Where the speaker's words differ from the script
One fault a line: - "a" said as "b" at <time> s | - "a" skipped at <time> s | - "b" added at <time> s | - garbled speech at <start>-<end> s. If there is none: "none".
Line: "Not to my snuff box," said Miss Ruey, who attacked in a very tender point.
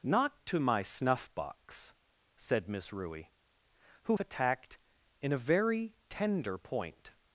none